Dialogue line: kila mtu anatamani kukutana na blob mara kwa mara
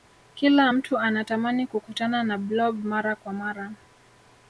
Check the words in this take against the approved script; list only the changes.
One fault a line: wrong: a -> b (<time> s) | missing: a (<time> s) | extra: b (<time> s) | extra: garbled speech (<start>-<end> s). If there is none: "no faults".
no faults